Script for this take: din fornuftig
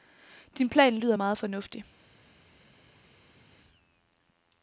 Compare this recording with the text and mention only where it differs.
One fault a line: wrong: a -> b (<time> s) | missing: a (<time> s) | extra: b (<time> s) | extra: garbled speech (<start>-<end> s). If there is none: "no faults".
extra: plan lyder meget (0.7 s)